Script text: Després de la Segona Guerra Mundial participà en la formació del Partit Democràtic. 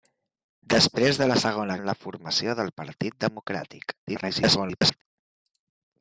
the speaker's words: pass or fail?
fail